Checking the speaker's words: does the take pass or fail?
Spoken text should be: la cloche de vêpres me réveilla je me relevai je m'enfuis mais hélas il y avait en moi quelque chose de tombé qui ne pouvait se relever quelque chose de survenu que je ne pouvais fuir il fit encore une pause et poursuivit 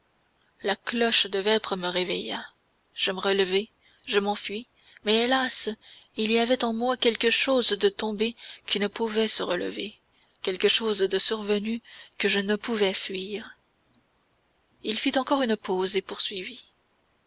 pass